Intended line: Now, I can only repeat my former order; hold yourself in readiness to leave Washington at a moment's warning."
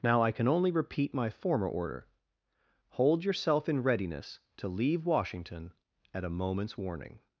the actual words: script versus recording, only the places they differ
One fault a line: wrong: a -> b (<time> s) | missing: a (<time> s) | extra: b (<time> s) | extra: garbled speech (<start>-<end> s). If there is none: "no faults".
no faults